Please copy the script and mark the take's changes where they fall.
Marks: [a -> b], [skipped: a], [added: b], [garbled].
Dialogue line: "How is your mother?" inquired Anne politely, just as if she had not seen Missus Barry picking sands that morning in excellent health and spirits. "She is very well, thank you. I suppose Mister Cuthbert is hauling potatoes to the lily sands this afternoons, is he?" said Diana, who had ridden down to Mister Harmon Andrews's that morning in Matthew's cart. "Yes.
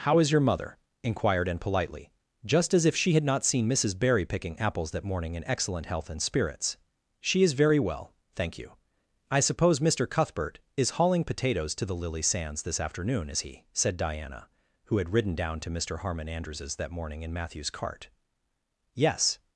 "How is your mother?" inquired Anne politely, just as if she had not seen Missus Barry picking [sands -> apples] that morning in excellent health and spirits. "She is very well, thank you. I suppose Mister Cuthbert is hauling potatoes to the lily sands this [afternoons, -> afternoon] is he?" said Diana, who had ridden down to Mister Harmon Andrews's that morning in Matthew's cart. "Yes.